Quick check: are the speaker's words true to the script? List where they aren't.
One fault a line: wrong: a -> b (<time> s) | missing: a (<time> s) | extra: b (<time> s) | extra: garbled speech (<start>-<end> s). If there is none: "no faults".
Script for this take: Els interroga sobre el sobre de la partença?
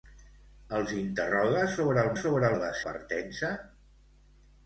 no faults